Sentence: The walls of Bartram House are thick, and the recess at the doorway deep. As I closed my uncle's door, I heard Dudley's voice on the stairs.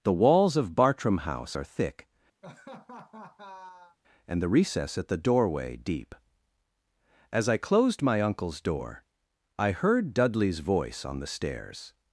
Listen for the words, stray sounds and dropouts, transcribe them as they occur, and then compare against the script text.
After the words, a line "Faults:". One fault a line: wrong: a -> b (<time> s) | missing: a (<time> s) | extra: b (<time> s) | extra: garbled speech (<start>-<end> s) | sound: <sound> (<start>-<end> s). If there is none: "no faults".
The walls of Bartram House are thick, and the recess at the doorway deep. As I closed my uncle's door, I heard Dudley's voice on the stairs.
Faults:
sound: laugh (2.4-4.0 s)